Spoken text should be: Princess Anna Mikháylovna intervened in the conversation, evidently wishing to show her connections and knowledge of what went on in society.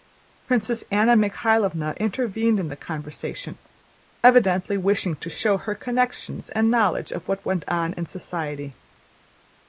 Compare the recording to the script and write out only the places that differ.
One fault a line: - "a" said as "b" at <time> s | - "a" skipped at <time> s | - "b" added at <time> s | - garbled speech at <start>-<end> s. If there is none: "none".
none